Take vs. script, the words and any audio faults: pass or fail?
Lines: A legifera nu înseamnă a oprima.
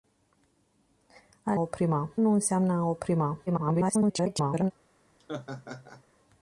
fail